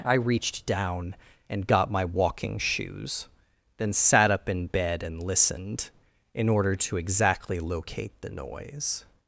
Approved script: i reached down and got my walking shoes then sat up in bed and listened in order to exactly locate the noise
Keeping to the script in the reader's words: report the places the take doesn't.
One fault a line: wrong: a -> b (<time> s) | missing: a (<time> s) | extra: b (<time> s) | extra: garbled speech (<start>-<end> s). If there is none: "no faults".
no faults